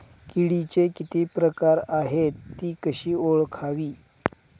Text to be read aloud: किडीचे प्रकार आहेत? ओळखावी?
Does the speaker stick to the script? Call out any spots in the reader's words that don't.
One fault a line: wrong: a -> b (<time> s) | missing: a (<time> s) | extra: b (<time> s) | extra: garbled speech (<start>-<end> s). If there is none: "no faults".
extra: किती (0.9 s)
extra: ति कशी (2.6 s)